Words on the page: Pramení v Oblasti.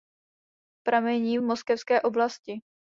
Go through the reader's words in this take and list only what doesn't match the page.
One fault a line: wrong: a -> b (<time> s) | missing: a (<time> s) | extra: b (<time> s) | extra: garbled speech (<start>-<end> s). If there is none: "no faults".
extra: Moskevské (1.4 s)